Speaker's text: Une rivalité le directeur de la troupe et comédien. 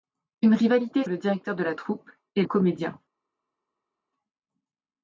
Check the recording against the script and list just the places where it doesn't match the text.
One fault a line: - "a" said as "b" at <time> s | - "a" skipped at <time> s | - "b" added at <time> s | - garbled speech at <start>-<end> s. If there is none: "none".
none